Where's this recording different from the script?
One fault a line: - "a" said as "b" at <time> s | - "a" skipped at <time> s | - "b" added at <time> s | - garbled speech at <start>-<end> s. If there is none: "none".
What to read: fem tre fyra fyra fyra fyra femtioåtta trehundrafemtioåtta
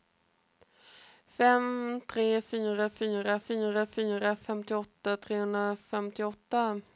none